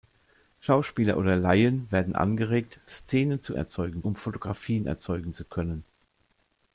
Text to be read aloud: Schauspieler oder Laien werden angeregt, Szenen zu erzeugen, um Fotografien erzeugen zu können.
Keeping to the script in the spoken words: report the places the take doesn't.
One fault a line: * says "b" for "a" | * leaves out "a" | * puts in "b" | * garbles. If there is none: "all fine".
all fine